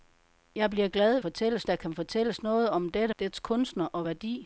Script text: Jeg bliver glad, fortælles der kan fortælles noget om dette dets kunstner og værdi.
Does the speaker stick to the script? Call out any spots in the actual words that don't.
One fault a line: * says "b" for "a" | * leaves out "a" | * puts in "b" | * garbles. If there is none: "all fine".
all fine